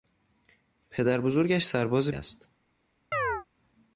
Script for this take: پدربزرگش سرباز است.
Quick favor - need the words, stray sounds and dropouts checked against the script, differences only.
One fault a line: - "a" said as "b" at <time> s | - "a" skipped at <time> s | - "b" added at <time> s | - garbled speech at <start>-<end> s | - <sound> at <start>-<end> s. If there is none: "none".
- chirp at 3.1-3.5 s